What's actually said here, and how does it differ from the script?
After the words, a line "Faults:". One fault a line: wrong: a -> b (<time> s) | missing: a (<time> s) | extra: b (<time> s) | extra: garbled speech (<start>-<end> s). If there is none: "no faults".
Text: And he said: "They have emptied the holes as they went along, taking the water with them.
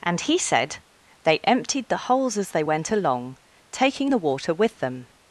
And he said: "They emptied the holes as they went along, taking the water with them.
Faults:
missing: have (1.4 s)